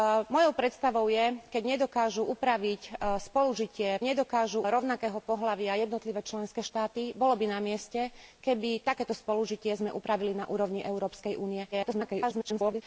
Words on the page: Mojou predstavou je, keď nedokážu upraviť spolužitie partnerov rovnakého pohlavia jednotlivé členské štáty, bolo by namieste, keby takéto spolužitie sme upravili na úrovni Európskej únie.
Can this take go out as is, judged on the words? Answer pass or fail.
fail